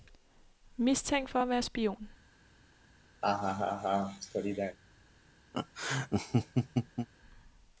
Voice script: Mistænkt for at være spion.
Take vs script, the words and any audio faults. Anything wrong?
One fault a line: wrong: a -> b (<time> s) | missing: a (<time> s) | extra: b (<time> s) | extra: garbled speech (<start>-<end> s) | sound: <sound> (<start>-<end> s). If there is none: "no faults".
sound: laugh (3.2-4.8 s)
sound: laugh (5.5-7.1 s)